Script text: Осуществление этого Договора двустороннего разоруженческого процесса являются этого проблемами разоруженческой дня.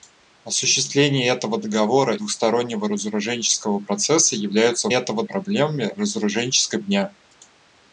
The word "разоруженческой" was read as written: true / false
true